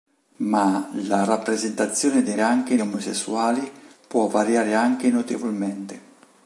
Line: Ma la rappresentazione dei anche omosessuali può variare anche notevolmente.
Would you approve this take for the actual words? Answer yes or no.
yes